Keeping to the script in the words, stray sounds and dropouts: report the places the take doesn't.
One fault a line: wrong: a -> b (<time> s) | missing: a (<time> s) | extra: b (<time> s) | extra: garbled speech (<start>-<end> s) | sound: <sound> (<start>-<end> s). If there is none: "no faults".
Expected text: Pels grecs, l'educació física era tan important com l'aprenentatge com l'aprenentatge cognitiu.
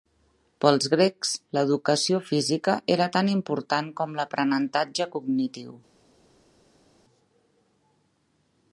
missing: com l'aprenentatge (5.1 s)